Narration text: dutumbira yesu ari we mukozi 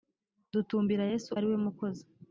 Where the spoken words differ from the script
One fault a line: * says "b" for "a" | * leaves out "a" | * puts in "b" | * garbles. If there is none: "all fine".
all fine